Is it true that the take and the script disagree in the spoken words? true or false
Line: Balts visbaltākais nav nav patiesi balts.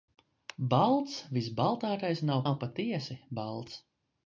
false